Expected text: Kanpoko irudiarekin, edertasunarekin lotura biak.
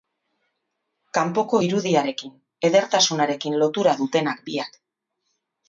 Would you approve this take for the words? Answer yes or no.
no